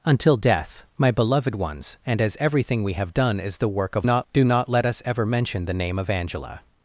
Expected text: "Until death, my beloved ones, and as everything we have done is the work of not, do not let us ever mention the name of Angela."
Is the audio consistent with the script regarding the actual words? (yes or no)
yes